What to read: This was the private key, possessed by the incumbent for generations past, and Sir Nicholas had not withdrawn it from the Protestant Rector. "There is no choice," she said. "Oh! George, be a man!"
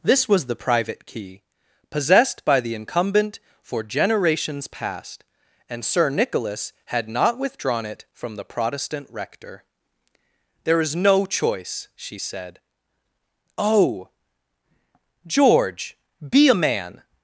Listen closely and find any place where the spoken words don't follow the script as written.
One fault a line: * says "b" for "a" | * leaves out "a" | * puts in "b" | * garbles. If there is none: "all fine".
all fine